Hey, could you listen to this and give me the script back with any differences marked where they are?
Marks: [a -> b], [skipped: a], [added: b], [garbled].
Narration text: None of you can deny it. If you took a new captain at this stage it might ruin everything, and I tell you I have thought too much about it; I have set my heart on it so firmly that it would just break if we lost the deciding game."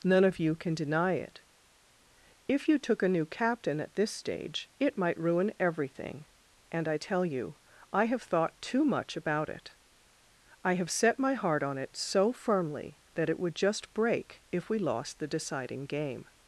None of you can deny it. If you took a new captain at this stage it might ruin everything, and I tell you I have thought too much about it; I have set my heart on it so firmly that it would just break if we lost the deciding game."